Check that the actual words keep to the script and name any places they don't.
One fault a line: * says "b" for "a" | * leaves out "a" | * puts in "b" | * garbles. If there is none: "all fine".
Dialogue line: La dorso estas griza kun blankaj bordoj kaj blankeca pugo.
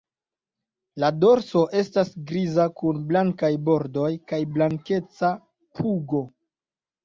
all fine